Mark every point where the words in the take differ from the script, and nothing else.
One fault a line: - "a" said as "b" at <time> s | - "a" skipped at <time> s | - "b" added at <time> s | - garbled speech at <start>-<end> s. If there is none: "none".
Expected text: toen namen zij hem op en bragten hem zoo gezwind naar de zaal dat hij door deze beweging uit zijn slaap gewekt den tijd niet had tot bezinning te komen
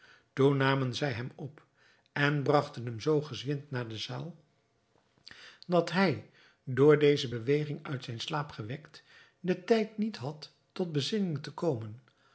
none